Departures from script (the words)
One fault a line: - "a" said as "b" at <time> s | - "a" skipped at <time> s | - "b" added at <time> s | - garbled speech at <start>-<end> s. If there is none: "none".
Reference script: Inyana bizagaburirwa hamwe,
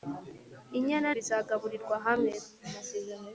none